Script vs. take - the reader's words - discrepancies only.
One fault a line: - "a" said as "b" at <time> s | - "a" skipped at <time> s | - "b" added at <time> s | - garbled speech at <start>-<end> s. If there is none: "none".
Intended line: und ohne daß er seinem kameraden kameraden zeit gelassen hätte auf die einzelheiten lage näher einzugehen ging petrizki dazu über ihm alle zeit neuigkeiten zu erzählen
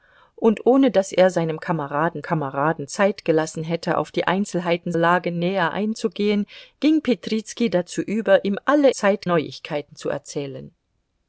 none